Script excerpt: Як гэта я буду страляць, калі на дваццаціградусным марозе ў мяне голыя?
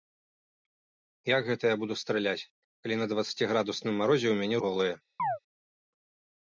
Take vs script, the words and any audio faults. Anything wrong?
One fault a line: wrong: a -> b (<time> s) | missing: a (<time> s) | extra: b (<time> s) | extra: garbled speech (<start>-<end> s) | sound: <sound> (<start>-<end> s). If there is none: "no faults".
sound: chirp (5.2-5.4 s)